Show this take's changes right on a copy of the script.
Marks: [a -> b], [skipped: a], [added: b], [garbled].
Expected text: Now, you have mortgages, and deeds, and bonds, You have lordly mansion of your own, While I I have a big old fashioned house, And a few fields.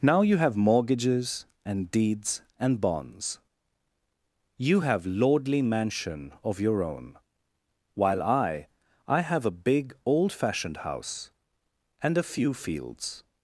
Now, you have mortgages, and deeds, and bonds, You have lordly mansion of your own, While I I have a big old fashioned house, And a few fields.